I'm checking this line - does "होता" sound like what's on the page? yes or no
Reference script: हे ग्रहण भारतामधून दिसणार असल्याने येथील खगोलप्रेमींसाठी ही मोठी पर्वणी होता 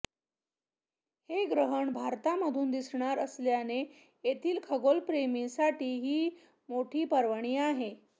no